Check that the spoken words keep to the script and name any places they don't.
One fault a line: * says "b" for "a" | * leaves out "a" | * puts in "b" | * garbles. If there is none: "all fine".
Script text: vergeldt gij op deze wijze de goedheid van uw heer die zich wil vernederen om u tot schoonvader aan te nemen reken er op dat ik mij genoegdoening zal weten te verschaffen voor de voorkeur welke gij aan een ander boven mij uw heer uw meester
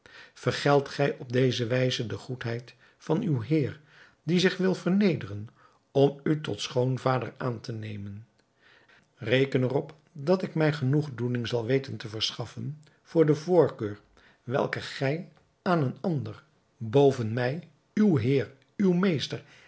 all fine